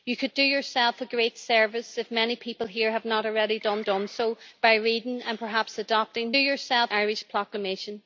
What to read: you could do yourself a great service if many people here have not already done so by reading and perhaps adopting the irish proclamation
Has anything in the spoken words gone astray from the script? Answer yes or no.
yes